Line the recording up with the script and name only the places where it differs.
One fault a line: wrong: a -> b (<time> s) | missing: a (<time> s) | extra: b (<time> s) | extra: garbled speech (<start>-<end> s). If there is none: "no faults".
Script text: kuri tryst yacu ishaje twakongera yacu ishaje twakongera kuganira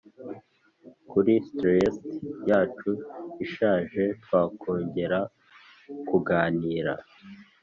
missing: yacu ishaje twakongera (5.2 s)